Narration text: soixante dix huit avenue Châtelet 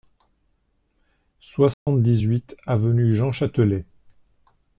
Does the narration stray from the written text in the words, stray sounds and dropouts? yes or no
yes